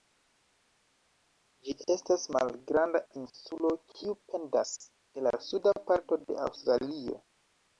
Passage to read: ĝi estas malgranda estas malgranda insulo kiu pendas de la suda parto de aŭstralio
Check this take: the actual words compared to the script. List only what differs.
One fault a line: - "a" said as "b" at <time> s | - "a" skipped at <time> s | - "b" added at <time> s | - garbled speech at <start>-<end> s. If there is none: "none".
- "estas malgranda" skipped at 3.0 s